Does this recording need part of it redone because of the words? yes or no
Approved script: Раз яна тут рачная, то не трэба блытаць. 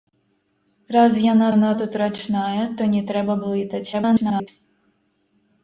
yes